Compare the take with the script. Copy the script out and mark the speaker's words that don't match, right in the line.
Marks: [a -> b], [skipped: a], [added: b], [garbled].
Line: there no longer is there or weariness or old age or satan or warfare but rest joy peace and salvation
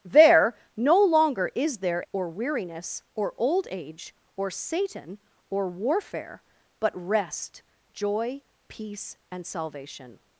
there no longer is there or weariness or old age or satan or warfare but rest joy peace and salvation